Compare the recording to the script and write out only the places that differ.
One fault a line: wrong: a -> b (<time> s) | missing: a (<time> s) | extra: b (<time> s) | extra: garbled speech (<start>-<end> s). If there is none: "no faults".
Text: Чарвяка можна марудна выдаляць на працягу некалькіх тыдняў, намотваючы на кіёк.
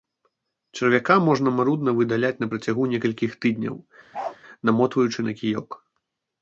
no faults